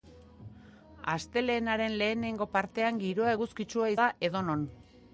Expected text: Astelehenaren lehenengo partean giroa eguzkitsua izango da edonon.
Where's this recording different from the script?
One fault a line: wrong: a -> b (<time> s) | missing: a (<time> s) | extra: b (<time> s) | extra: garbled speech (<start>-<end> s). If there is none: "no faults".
missing: izango (3.9 s)